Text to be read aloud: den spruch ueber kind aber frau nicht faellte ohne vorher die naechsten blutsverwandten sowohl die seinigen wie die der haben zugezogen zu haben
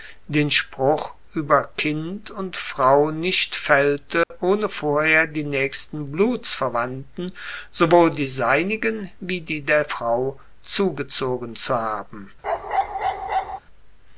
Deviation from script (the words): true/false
true